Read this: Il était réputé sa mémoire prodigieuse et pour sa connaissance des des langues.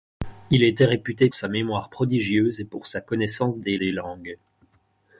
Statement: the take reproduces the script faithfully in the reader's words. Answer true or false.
true